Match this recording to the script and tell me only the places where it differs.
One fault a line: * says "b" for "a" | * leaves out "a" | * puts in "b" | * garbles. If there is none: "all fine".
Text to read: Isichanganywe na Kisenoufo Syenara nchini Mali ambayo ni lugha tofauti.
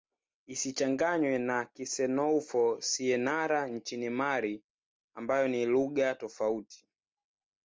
all fine